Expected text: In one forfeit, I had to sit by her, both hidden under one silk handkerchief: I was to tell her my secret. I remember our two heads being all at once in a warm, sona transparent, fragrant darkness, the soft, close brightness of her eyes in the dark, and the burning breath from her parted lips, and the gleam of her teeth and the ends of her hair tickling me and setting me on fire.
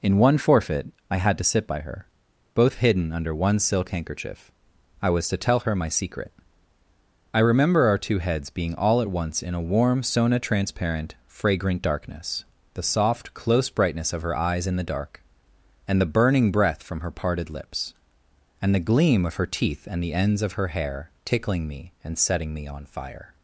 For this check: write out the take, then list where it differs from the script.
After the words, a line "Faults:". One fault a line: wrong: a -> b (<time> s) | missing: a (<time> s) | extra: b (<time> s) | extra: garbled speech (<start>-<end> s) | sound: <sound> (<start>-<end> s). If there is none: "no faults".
In one forfeit, I had to sit by her, both hidden under one silk handkerchief: I was to tell her my secret. I remember our two heads being all at once in a warm, sona transparent, fragrant darkness, the soft, close brightness of her eyes in the dark, and the burning breath from her parted lips, and the gleam of her teeth and the ends of her hair tickling me and setting me on fire.
Faults:
no faults